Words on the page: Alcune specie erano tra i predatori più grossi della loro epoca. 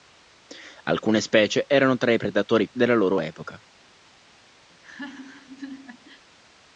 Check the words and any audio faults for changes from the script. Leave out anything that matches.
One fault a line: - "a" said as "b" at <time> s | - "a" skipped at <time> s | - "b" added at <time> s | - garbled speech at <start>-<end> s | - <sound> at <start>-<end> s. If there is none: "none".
- "più grossi" skipped at 2.7 s
- laugh at 4.7-6.3 s